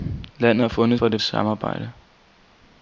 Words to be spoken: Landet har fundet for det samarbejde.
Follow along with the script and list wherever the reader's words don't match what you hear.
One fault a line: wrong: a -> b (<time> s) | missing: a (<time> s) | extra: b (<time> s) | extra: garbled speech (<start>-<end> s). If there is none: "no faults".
no faults